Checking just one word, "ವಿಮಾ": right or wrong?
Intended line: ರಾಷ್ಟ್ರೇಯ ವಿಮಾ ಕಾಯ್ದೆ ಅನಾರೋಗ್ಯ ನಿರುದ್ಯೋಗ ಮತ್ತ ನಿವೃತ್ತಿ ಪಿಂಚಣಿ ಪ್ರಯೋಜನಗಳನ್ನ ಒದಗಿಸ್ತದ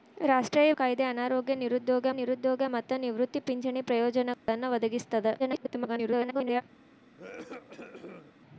wrong